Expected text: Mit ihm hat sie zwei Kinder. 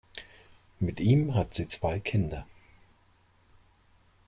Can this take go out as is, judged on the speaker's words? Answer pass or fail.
pass